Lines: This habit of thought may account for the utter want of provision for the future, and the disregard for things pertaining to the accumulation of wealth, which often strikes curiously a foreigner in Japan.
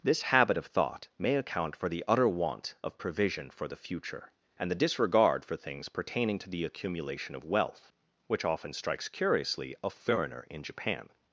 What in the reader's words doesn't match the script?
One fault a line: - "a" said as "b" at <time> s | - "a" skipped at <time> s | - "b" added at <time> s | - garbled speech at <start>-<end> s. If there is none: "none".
none